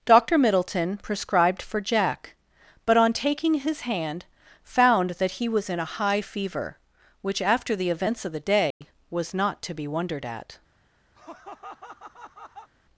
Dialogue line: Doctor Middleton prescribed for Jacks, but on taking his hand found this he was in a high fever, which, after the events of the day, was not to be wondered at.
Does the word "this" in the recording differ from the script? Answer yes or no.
yes